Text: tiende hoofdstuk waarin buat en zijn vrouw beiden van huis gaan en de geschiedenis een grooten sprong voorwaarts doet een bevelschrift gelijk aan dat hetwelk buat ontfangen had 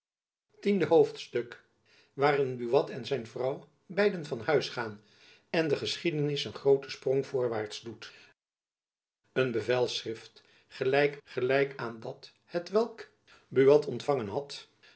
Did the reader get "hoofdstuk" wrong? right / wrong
right